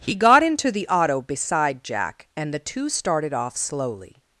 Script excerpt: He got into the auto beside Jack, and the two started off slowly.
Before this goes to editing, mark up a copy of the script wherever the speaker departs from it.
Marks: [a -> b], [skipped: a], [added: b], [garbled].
He got into the auto beside Jack, and the two started off slowly.